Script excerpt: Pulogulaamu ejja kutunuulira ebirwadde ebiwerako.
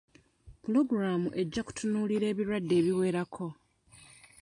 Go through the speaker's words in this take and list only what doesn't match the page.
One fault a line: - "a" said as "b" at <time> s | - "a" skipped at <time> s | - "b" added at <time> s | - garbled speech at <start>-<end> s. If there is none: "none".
none